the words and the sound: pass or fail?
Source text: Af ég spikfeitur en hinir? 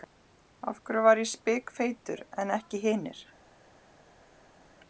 fail